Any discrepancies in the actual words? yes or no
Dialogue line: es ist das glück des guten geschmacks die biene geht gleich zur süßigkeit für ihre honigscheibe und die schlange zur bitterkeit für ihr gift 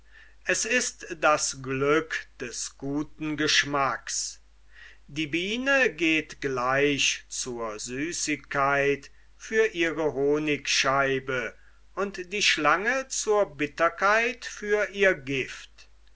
no